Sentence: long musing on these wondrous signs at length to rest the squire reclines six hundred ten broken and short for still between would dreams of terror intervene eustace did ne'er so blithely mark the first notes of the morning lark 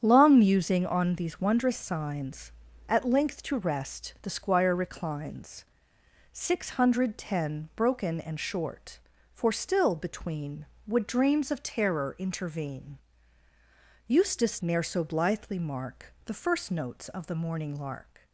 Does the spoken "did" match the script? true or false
false